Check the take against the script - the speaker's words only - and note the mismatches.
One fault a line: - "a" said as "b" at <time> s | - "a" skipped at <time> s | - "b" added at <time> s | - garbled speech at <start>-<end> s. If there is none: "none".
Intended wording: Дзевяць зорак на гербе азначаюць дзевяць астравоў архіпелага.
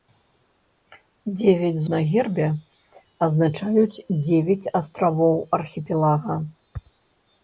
- "зорак" skipped at 1.8 s